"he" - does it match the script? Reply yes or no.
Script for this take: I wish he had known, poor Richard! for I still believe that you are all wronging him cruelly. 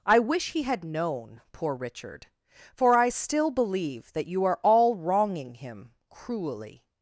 yes